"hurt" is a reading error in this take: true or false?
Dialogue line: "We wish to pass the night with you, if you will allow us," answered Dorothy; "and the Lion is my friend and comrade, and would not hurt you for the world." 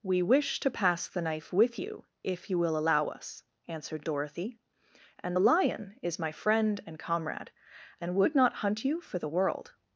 true